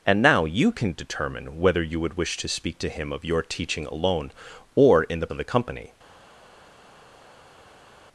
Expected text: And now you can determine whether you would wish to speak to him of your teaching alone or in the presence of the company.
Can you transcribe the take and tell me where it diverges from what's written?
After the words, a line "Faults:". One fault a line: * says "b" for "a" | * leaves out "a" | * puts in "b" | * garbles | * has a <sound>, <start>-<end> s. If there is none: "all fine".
And now you can determine whether you would wish to speak to him of your teaching alone or in the of the company.
Faults:
* leaves out "presence"